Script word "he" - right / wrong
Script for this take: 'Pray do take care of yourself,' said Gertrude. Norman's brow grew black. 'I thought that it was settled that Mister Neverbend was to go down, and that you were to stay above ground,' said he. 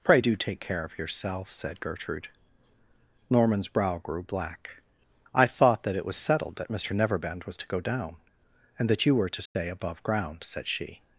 wrong